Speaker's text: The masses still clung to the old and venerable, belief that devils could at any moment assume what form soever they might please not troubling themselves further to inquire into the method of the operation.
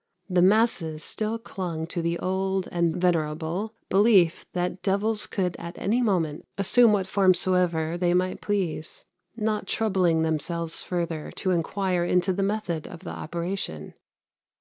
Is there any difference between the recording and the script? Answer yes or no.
no